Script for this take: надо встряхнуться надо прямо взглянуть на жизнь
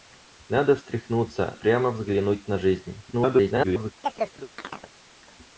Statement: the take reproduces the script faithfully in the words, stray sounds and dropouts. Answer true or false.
false